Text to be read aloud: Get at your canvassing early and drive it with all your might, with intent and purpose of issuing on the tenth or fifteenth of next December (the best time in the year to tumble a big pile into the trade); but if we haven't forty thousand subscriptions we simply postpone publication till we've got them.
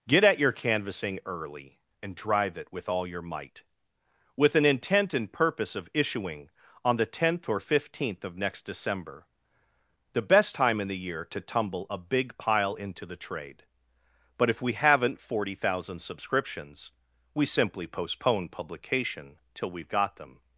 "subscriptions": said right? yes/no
yes